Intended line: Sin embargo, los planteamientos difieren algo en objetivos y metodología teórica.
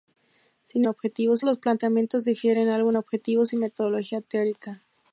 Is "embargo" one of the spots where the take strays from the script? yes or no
yes